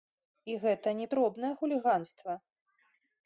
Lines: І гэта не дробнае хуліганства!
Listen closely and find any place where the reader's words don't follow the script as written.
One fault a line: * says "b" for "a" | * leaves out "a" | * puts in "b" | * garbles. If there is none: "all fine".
all fine